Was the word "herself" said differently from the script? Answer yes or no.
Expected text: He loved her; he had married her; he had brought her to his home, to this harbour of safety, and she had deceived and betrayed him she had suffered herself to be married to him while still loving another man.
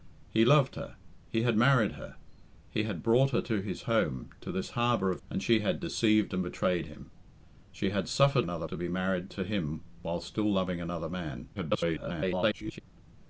yes